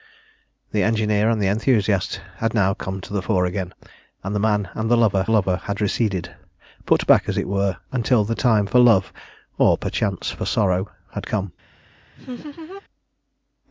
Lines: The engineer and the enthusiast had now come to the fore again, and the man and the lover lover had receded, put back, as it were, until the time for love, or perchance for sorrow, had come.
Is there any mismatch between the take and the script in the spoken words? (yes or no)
no